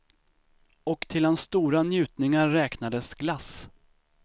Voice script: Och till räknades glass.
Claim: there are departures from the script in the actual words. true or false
true